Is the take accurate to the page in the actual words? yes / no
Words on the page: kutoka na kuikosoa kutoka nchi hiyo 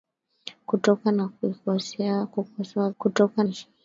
yes